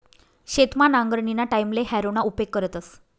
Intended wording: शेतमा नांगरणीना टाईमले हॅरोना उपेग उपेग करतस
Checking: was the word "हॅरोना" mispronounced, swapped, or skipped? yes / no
no